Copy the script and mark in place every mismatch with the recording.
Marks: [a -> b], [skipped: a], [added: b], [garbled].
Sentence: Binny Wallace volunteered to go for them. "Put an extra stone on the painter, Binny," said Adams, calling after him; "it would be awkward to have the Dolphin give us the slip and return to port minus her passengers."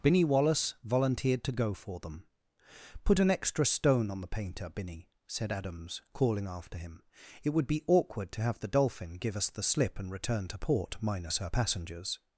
Binny Wallace volunteered to go for them. "Put an extra stone on the painter, Binny," said Adams, calling after him; "it would be awkward to have the Dolphin give us the slip and return to port minus her passengers."